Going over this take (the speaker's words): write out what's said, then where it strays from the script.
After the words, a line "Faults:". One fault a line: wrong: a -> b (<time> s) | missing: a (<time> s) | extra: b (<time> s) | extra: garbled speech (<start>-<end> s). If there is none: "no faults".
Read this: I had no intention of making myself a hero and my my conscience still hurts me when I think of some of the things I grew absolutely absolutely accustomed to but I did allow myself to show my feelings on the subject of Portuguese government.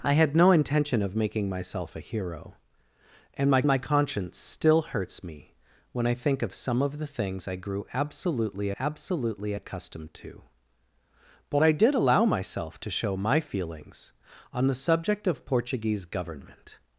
I had no intention of making myself a hero and my my conscience still hurts me when I think of some of the things I grew absolutely absolutely accustomed to but I did allow myself to show my feelings on the subject of Portuguese government.
Faults:
no faults